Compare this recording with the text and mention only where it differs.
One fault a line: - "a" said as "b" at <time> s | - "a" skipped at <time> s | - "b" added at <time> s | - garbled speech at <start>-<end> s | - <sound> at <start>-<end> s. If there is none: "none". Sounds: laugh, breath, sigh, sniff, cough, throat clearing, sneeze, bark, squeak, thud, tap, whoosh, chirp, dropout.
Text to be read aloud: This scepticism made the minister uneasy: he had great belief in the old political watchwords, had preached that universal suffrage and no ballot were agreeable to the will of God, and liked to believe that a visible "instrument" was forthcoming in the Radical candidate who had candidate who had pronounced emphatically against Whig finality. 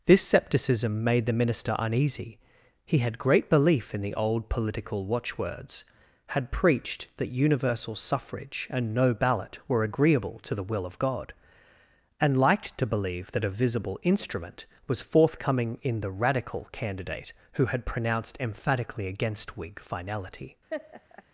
- "candidate who had" skipped at 17.9 s
- laugh at 20.7-21.2 s